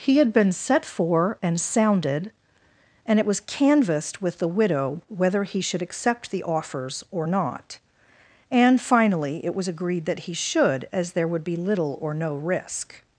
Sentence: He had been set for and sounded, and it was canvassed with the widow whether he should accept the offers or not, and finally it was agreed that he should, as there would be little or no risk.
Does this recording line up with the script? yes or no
yes